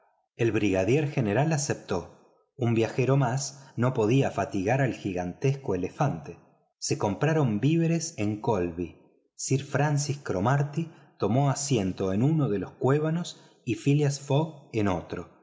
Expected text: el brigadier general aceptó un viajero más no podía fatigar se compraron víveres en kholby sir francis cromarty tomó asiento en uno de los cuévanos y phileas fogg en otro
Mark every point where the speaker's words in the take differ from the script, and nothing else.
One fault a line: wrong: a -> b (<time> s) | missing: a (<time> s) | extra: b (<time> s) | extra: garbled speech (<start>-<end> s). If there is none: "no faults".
extra: al gigantesco elefante (4.8 s)